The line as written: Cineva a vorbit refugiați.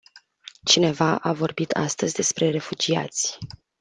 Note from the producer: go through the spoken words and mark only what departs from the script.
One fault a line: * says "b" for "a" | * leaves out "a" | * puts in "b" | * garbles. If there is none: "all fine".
* puts in "astăzi despre"